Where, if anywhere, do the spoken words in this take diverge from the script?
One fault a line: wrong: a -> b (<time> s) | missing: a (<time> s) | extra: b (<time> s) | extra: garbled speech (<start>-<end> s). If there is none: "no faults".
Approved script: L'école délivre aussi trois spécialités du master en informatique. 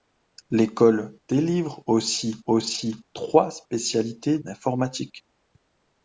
extra: aussi (2.5 s)
missing: du master en (4.4 s)